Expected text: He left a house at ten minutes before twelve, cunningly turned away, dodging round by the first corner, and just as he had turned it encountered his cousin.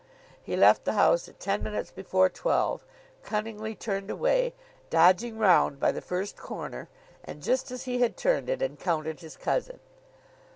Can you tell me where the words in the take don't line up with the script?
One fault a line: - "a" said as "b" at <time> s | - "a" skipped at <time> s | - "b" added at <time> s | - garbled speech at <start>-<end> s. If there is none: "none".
- "a" said as "the" at 0.8 s